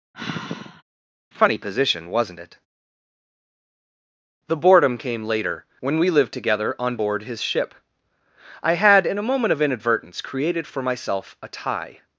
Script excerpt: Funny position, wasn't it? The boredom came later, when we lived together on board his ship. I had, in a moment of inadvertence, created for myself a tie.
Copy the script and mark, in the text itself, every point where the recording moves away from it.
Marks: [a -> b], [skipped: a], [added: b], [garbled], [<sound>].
[sigh] Funny position, wasn't it? The boredom came later, when we lived together on board his ship. I had, in a moment of inadvertence, created for myself a tie.